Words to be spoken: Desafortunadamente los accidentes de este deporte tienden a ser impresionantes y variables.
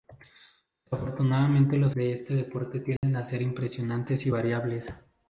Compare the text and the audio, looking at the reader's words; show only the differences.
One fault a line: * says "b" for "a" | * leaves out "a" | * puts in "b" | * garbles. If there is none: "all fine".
* leaves out "accidentes"